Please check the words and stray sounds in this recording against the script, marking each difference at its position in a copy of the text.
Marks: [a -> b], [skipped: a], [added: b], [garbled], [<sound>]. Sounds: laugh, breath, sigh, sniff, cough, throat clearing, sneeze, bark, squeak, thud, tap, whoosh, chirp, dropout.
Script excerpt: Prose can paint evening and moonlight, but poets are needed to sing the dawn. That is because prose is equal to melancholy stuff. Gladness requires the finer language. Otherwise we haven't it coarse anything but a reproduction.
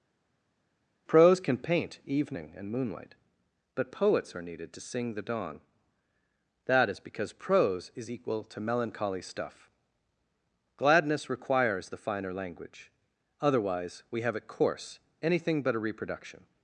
Prose can paint evening and moonlight, but poets are needed to sing the dawn. That is because prose is equal to melancholy stuff. Gladness requires the finer language. Otherwise we [haven't -> have] it coarse anything but a reproduction.